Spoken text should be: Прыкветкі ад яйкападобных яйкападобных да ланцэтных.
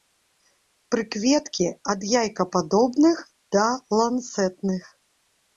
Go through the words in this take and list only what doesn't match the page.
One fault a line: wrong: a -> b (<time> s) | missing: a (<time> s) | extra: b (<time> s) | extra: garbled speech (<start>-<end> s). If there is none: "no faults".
missing: яйкападобных (3.2 s)